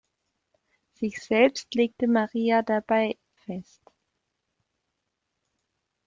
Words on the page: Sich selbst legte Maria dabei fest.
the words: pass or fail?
pass